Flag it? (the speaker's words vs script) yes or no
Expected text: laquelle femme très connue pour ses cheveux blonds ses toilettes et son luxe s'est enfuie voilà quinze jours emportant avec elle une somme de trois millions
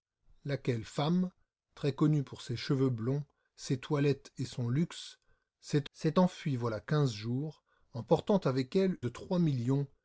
yes